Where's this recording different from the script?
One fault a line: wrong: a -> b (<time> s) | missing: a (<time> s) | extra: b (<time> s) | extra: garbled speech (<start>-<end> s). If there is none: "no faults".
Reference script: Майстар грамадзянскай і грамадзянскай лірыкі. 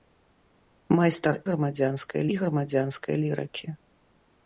no faults